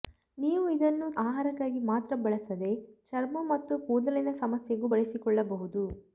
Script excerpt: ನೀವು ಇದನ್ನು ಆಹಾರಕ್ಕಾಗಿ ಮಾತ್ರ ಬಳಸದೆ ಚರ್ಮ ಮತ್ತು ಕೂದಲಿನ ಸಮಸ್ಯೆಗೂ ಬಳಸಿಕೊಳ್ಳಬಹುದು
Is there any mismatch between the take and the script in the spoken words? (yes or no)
no